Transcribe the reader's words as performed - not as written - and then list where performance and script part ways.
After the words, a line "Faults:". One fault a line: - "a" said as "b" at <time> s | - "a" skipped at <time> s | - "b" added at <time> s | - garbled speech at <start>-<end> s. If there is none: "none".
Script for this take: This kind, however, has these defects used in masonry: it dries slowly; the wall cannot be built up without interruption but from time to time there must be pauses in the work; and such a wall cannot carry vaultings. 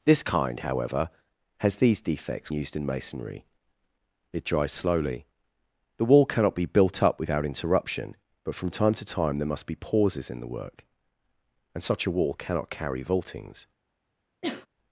This kind, however, has these defects used in masonry: it dries slowly; the wall cannot be built up without interruption but from time to time there must be pauses in the work; and such a wall cannot carry vaultings.
Faults:
none